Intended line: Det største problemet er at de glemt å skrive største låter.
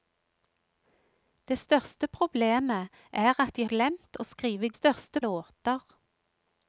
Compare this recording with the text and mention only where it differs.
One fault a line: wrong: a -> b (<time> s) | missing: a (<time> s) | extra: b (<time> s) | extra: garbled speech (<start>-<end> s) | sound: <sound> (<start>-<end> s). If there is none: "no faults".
no faults